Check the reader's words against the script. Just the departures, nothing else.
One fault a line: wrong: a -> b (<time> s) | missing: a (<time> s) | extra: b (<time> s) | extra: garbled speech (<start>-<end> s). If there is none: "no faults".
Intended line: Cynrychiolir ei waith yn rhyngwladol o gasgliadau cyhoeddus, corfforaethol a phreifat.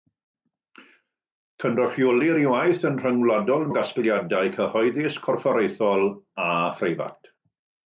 no faults